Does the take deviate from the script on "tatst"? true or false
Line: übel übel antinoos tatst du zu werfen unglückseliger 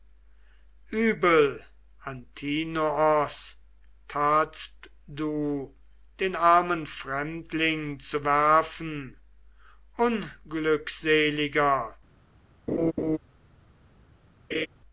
false